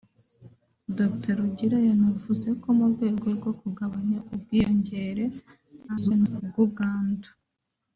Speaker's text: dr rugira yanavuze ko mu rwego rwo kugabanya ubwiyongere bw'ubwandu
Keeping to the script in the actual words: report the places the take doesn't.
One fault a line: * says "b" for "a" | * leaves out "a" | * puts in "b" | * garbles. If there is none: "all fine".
* garbles